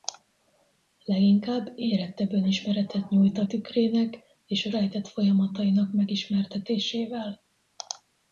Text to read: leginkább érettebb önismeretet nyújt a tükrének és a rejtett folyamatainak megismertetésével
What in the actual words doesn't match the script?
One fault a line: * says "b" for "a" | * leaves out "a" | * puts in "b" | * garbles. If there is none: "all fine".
all fine